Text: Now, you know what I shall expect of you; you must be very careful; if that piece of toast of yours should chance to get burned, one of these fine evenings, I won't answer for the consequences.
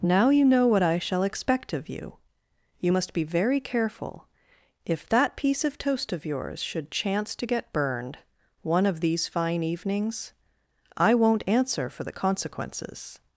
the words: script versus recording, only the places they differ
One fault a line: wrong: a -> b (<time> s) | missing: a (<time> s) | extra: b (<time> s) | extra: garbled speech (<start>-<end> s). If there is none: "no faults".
no faults